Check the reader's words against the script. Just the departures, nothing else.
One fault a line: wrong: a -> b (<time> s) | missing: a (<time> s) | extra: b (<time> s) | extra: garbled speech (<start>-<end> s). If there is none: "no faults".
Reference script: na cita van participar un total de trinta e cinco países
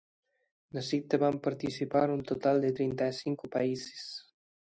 no faults